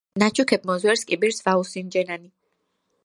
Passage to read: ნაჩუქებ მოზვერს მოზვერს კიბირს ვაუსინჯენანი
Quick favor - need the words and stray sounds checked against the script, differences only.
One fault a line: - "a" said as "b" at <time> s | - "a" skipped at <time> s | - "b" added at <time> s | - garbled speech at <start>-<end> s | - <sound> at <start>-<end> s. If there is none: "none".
- "მოზვერს" skipped at 1.0 s